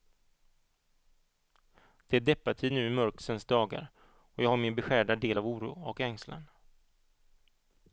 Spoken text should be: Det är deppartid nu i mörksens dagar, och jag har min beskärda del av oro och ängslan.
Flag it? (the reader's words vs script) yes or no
no